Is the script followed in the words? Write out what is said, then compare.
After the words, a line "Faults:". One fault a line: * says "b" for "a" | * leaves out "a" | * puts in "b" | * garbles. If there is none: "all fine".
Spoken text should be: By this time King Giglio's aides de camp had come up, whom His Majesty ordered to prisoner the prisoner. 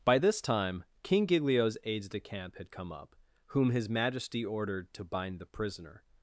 By this time King Giglio's aides de camp had come up, whom His Majesty ordered to bind the prisoner.
Faults:
* says "bind" for "prisoner"